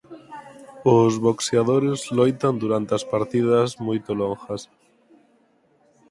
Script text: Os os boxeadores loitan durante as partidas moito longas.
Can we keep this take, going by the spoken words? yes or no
no